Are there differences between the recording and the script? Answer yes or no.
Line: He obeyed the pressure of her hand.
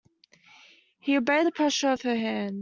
no